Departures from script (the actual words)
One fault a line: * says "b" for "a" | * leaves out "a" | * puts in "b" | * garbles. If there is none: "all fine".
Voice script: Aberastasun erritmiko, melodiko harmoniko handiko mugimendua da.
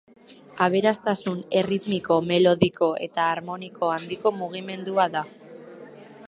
* puts in "eta"